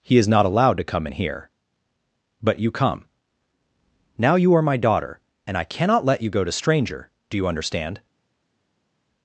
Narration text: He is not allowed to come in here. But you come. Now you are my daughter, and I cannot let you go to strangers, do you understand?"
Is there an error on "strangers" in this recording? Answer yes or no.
yes